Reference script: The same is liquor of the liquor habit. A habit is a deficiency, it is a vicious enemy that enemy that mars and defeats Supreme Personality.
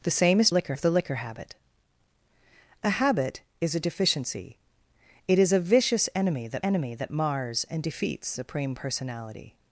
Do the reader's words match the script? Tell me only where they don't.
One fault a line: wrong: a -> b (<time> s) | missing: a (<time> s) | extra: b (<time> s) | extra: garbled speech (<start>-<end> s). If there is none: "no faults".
no faults